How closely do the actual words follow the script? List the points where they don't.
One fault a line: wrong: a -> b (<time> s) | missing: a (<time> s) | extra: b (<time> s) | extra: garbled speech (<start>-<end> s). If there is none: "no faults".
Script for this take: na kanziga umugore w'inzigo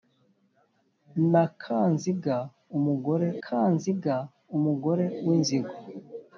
extra: kanziga umugore (3.4 s)